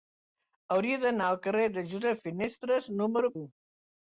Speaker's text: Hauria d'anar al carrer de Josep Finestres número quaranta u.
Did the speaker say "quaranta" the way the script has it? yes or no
no